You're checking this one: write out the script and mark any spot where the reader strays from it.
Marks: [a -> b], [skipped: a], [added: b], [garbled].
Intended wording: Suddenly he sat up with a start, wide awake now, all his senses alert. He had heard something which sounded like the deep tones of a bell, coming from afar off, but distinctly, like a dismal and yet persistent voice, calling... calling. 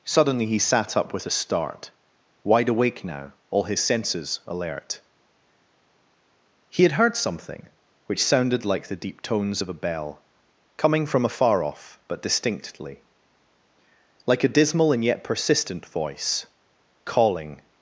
Suddenly he sat up with a start, wide awake now, all his senses alert. He had heard something which sounded like the deep tones of a bell, coming from afar off, but distinctly, like a dismal and yet persistent voice, calling... [skipped: calling.]